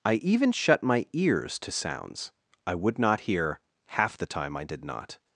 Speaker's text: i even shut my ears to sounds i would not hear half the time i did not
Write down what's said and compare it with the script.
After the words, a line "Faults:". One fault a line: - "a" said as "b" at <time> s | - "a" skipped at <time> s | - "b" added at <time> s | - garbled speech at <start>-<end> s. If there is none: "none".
i even shut my ears to sounds i would not hear half the time i did not
Faults:
none